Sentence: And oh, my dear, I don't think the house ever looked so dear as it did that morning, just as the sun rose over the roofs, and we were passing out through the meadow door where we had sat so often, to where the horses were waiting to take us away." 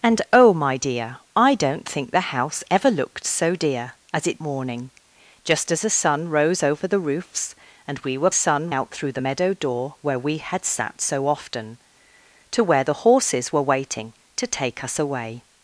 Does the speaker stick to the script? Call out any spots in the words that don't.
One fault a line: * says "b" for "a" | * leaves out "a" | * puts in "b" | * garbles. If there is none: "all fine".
* leaves out "did that"
* says "sun" for "passing"